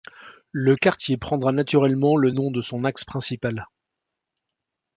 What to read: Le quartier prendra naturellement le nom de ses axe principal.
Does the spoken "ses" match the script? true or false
false